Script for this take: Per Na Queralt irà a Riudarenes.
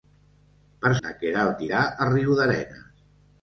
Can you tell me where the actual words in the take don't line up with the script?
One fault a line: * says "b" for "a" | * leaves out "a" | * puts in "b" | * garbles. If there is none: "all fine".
all fine